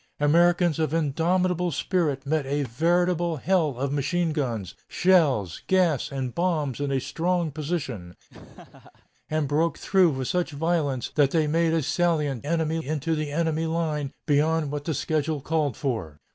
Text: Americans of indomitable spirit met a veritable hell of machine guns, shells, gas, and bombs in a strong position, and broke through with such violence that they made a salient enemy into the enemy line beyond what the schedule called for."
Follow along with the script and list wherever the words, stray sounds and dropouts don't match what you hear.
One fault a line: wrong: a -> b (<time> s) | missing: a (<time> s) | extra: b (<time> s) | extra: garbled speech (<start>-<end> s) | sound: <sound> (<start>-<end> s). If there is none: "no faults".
sound: laugh (8.3-9.1 s)